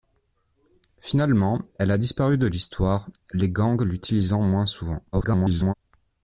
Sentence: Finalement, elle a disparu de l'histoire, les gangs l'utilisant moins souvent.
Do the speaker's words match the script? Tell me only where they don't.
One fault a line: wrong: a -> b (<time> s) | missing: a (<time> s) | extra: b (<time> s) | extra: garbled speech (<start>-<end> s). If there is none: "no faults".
extra: garbled speech (5.1-5.7 s)